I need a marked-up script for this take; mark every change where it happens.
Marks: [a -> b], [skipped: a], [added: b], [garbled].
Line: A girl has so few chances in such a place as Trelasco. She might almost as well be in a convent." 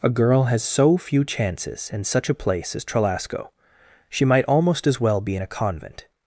A girl has so few chances in such a place as Trelasco. She might almost as well be in a convent."